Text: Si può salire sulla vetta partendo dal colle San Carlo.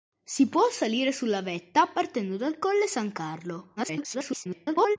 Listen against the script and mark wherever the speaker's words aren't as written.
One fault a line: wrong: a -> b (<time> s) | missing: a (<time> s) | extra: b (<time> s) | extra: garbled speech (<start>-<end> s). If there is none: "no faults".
extra: garbled speech (3.8-5.0 s)